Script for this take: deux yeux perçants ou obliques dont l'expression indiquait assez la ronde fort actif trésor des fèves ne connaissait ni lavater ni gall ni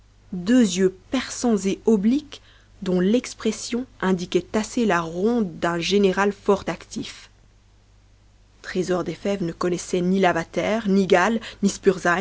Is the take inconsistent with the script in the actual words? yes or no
yes